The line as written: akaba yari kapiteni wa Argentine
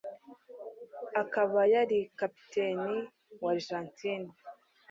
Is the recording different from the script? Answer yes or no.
no